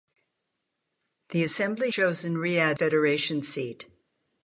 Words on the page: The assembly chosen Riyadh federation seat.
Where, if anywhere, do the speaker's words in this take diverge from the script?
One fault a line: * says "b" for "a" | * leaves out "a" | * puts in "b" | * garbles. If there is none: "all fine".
all fine